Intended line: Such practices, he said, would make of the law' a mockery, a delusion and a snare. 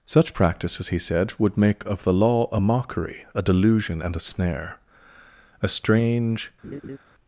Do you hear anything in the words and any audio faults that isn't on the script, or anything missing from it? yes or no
yes